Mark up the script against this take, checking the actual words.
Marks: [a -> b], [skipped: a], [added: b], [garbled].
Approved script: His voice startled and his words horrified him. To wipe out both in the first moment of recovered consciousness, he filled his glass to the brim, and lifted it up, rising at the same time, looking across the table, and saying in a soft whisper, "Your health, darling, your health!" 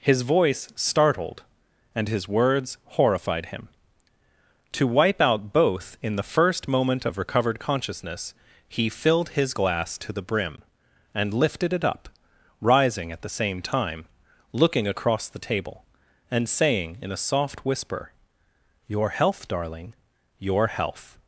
His voice startled and his words horrified him. To wipe out both in the first moment of recovered consciousness, he filled his glass to the brim, and lifted it up, rising at the same time, looking across the table, and saying in a soft whisper, "Your health, darling, your health!"